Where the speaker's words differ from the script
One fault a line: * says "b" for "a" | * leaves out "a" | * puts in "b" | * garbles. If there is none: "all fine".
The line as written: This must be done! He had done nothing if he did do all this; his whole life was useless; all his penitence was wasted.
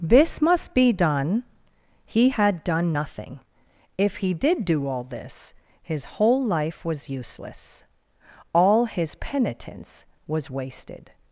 all fine